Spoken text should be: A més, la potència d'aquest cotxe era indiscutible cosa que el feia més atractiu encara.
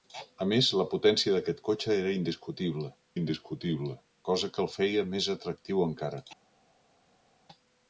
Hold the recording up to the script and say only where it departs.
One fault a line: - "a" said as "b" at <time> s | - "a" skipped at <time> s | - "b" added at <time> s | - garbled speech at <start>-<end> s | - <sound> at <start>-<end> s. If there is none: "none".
- "indiscutible" added at 3.2 s